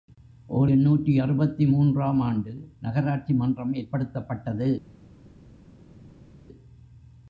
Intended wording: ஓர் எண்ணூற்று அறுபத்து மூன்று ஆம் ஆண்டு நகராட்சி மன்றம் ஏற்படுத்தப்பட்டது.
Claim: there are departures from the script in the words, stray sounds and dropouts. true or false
false